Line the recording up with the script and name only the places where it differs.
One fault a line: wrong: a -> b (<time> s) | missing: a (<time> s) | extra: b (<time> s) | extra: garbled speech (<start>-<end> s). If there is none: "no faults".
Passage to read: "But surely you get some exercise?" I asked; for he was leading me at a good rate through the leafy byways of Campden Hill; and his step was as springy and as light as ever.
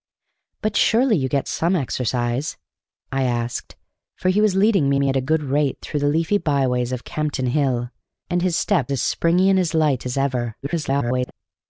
extra: me (5.0 s)
missing: was (8.9 s)
extra: garbled speech (10.6-11.3 s)